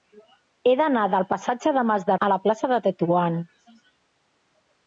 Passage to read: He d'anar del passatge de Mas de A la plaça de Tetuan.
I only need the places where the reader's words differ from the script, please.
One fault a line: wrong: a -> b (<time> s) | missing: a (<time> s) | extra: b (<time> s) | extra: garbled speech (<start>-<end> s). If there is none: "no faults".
no faults